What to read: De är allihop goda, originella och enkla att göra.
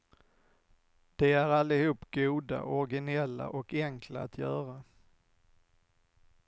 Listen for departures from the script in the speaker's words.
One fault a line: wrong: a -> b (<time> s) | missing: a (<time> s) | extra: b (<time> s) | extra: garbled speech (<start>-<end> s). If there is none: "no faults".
no faults